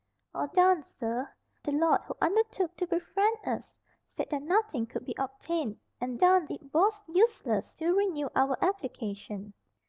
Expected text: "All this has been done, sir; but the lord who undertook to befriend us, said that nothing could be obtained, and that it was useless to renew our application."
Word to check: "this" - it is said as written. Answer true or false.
false